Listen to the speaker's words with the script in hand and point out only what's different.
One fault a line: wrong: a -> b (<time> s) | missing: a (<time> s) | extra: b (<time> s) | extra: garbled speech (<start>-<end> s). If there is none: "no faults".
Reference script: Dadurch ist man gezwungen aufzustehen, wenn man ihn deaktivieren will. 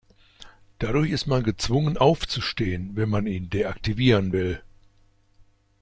no faults